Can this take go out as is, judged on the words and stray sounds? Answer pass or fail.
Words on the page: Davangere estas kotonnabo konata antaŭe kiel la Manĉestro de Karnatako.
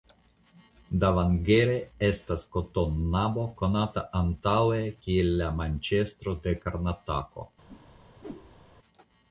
fail